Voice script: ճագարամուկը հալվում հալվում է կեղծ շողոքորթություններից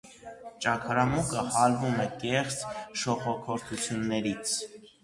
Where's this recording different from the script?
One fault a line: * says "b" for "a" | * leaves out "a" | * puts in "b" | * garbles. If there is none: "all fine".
* leaves out "հալվում"